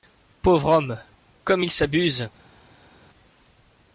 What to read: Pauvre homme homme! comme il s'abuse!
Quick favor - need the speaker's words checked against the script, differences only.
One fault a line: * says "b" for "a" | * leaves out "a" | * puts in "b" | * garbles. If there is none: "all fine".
* leaves out "homme"